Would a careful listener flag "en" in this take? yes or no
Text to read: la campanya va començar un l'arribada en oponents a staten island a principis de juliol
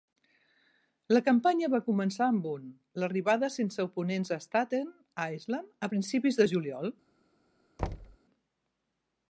yes